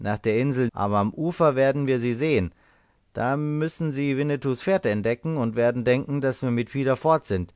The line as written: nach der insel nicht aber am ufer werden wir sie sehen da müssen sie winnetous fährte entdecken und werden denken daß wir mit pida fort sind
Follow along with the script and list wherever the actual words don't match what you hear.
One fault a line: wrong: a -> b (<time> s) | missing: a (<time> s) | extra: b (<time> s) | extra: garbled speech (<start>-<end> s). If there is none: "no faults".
missing: nicht (0.7 s)